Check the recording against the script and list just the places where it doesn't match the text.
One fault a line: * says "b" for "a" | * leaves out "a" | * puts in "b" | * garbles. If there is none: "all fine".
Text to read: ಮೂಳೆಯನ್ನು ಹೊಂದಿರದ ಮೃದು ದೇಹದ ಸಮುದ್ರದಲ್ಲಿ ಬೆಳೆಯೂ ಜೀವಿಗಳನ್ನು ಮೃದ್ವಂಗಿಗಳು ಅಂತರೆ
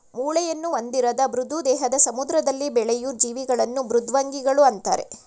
all fine